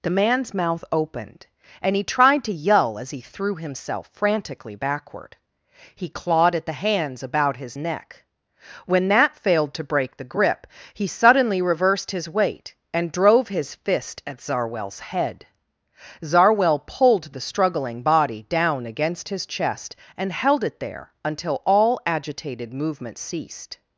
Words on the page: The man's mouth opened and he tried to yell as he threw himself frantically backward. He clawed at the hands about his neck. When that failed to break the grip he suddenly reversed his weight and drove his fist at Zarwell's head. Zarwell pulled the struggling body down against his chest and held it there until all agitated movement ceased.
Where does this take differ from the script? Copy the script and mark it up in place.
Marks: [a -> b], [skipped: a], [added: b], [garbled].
The man's mouth opened and he tried to yell as he threw himself frantically backward. He clawed at the hands about his neck. When that failed to break the grip he suddenly reversed his weight and drove his fist at Zarwell's head. Zarwell pulled the struggling body down against his chest and held it there until all agitated movement ceased.